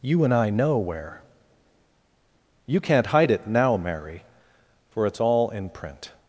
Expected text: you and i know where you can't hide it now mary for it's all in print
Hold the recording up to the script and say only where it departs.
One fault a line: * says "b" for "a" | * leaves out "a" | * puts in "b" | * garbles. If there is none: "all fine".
all fine